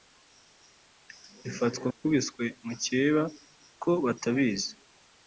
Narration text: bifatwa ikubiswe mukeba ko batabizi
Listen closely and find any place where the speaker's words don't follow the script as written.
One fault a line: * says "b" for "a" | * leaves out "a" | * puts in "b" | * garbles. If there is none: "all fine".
all fine